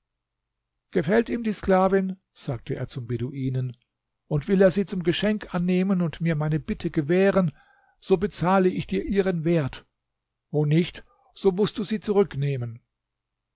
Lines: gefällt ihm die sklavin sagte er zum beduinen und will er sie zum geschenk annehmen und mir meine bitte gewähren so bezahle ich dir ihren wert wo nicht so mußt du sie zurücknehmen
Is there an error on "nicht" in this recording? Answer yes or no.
no